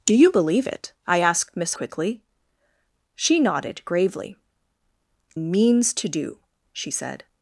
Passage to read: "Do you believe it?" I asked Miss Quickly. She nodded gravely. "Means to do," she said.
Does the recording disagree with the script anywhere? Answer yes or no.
no